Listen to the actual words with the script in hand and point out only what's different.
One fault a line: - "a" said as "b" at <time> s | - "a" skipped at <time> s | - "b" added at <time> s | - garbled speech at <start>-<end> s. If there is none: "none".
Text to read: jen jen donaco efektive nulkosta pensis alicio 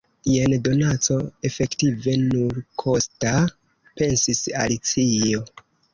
- "jen" skipped at 0.5 s